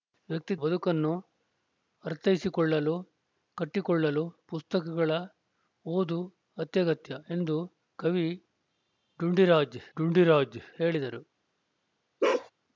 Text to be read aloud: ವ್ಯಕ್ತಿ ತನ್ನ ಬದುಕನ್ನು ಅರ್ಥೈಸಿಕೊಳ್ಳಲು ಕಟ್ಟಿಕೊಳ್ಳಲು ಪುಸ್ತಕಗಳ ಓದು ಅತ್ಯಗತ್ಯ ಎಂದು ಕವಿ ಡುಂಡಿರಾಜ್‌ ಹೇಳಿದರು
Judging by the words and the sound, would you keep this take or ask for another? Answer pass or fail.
fail